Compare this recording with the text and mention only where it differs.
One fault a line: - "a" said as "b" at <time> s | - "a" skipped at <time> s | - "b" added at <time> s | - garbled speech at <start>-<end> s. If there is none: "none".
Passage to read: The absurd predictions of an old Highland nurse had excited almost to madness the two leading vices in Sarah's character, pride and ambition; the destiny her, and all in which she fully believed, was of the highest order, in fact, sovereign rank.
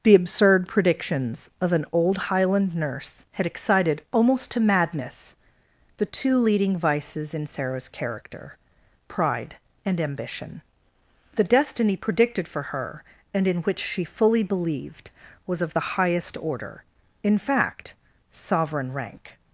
- "predicted for" added at 12.0 s
- "all" skipped at 13.5 s